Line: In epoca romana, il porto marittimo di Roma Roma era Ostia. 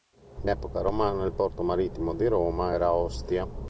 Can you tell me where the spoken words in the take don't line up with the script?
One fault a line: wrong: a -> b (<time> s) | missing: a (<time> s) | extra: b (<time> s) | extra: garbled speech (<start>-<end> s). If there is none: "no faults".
missing: Roma (2.7 s)